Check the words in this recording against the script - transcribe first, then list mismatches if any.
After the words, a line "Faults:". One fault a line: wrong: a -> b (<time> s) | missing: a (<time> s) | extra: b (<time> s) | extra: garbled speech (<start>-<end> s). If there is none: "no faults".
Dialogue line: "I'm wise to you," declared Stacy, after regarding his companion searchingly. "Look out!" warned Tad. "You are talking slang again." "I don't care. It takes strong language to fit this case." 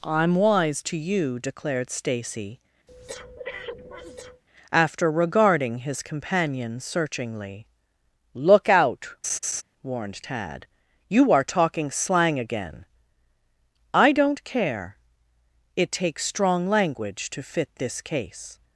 "I'm wise to you," declared Stacy, after regarding his companion searchingly. "Look out!" warned Tad. "You are talking slang again." "I don't care. It takes strong language to fit this case."
Faults:
no faults